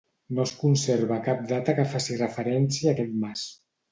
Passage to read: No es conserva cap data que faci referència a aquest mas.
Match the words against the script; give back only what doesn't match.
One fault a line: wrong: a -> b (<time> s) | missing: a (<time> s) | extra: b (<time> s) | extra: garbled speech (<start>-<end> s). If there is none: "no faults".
no faults